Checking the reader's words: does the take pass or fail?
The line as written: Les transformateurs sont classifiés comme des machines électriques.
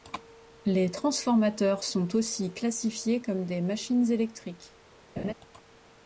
fail